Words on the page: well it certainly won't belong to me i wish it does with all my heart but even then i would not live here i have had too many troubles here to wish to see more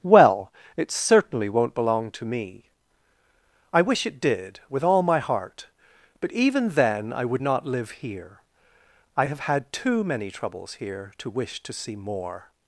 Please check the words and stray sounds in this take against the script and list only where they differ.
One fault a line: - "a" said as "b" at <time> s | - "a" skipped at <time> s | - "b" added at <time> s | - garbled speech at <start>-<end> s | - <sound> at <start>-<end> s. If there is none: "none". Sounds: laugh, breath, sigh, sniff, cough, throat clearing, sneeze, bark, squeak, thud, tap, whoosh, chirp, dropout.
- "does" said as "did" at 4.2 s